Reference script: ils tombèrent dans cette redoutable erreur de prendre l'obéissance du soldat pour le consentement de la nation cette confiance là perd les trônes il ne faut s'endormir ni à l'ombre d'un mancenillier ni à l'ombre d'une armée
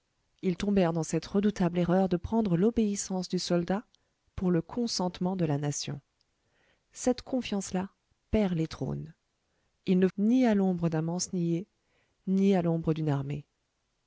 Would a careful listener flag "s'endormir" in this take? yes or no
yes